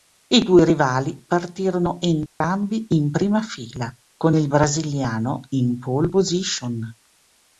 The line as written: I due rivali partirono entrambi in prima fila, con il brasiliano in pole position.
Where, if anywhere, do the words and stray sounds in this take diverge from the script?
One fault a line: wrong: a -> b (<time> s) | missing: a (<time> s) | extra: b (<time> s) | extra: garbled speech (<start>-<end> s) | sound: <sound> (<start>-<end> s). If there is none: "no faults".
sound: dropout (2.3-2.4 s)